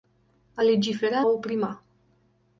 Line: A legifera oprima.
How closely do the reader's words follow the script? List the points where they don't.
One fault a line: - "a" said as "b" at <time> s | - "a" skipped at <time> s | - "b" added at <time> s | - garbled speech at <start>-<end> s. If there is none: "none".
none